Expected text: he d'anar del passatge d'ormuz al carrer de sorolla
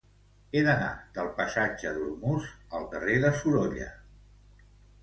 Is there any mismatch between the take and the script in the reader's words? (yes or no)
no